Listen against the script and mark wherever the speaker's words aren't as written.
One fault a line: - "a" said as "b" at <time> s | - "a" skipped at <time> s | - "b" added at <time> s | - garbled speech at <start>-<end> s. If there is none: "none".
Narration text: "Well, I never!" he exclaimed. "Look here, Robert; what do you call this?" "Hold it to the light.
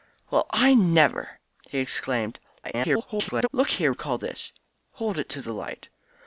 - garbled speech at 2.6-3.5 s
- "Robert what do" skipped at 3.9 s